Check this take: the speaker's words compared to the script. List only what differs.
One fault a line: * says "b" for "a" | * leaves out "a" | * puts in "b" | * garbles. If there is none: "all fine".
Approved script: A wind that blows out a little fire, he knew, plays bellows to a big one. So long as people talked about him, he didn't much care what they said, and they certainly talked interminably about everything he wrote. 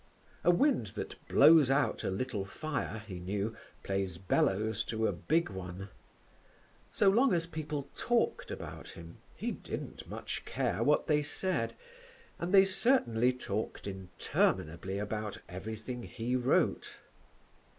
all fine